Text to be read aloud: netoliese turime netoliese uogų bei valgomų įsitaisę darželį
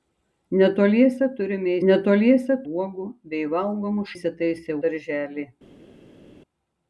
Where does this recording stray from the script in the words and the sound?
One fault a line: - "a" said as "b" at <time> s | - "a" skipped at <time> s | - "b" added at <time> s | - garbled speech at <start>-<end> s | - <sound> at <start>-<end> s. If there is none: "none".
none